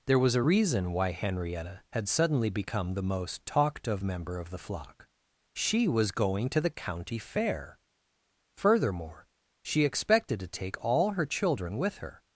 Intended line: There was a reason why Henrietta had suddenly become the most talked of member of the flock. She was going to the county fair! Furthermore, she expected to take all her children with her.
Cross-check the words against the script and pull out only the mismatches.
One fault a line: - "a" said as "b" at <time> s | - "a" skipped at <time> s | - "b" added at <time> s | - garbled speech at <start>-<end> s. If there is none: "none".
none